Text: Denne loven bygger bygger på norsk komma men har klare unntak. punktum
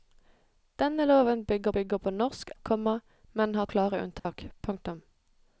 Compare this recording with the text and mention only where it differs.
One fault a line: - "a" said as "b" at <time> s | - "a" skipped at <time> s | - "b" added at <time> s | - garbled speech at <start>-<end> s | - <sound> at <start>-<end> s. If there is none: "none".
- dropout at 4.2-4.3 s